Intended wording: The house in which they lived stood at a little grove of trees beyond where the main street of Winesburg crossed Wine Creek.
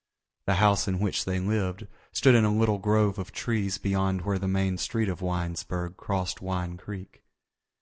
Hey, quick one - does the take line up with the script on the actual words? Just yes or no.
no